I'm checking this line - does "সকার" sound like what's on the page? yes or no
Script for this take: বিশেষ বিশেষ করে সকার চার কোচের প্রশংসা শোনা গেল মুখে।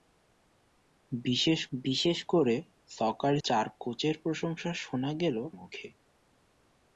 yes